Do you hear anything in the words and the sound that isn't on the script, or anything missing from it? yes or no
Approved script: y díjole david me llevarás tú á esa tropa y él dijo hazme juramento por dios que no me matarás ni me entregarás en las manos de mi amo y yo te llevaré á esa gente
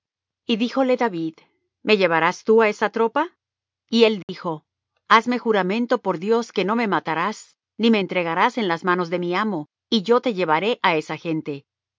yes